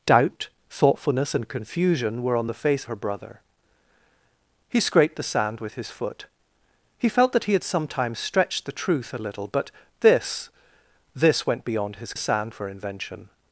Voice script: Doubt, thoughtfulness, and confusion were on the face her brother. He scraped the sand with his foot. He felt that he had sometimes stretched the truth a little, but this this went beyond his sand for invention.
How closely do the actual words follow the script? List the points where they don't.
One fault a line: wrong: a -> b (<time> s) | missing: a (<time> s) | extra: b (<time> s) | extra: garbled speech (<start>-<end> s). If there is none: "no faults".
no faults